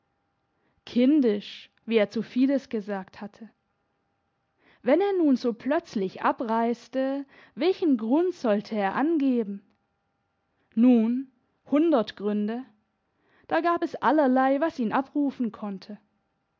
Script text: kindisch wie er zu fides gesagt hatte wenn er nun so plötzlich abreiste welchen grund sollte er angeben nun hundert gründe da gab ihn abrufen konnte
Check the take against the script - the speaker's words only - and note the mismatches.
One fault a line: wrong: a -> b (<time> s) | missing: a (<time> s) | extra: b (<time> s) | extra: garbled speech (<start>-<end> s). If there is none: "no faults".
extra: es allerlei was (13.8 s)